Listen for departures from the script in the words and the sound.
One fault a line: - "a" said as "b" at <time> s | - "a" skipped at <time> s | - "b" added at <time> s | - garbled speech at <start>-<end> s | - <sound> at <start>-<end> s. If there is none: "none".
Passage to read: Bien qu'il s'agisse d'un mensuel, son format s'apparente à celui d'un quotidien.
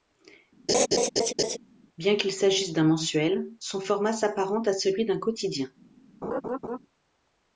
- laugh at 0.7-1.6 s
- laugh at 6.2-6.8 s